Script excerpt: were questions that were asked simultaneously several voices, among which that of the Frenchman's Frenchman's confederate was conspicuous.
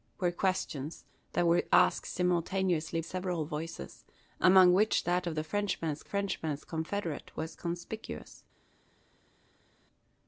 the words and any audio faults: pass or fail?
pass